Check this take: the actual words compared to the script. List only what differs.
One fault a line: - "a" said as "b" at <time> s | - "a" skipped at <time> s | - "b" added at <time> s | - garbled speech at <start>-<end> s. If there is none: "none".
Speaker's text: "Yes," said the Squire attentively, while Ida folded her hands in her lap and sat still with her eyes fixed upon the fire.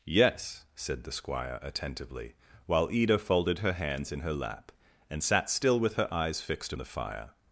- "upon" skipped at 6.7 s